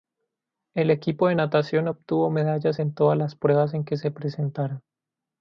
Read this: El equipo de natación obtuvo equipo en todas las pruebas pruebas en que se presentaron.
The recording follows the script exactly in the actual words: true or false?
false